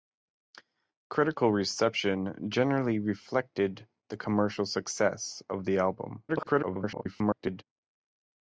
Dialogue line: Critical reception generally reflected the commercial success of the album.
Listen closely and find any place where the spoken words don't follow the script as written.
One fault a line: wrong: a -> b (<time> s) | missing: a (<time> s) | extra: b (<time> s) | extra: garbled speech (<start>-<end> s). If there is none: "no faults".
extra: garbled speech (6.3-7.6 s)